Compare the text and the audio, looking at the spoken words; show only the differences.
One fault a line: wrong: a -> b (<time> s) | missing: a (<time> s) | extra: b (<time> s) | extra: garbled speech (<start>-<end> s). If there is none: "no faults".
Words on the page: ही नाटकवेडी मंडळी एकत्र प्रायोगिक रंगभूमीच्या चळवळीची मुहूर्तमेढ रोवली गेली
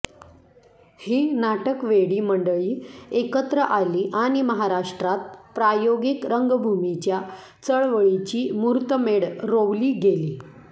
extra: आली आणि महाराष्ट्रात (3.7 s)